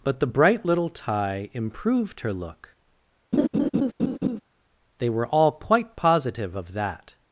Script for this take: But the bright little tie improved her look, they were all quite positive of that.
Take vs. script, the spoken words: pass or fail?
pass